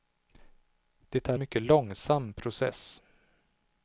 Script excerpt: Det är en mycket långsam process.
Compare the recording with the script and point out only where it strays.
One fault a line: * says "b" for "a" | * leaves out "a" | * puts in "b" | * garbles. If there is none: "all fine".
* leaves out "en"